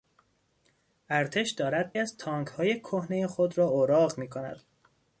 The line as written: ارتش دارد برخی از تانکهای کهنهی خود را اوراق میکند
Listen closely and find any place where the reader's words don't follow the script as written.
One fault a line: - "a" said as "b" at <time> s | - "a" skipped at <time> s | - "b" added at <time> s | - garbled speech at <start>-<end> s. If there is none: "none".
- "برخی" skipped at 1.9 s